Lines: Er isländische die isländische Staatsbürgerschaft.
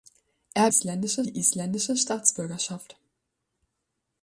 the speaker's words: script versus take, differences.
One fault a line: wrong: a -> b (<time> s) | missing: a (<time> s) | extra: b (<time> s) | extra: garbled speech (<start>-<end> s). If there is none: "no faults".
no faults